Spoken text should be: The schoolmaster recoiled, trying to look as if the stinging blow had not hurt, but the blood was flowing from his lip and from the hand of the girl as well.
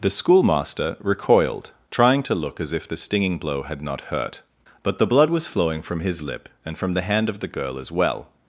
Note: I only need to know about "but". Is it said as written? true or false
true